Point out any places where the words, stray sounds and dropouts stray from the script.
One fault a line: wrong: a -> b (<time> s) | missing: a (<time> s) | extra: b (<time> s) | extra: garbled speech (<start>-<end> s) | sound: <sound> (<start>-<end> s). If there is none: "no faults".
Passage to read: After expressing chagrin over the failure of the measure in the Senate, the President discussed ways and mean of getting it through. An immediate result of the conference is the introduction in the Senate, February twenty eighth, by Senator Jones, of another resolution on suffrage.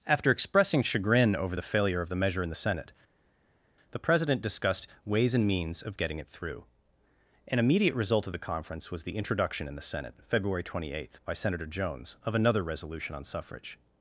wrong: mean -> means (5.5 s)
wrong: is -> was (8.9 s)